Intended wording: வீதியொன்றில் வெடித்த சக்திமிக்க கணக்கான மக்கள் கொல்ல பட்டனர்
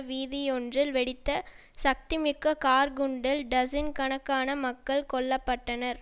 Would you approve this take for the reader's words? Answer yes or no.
no